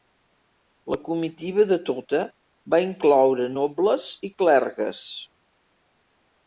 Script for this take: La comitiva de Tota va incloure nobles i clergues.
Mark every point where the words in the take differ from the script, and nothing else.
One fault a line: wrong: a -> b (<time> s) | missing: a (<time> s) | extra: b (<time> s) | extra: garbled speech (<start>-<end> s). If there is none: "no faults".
no faults